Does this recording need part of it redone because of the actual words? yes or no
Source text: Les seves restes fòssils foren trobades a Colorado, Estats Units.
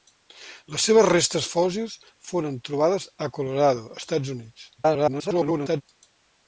yes